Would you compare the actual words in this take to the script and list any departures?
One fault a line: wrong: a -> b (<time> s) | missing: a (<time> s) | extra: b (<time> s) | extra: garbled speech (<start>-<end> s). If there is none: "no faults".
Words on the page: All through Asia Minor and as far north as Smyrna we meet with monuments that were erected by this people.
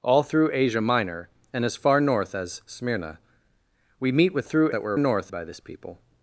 wrong: monuments -> through (4.4 s)
wrong: erected -> north (5.0 s)